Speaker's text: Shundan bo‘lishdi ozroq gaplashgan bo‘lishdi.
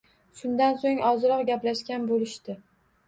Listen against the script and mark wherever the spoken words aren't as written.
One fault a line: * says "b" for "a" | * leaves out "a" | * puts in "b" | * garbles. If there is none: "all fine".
* says "so‘ng" for "bo‘lishdi"